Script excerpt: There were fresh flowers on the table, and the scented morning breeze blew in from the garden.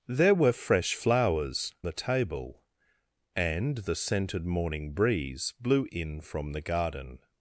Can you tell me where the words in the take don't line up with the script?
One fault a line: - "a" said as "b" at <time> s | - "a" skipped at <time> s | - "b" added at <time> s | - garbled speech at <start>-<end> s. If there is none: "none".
- "on" skipped at 1.7 s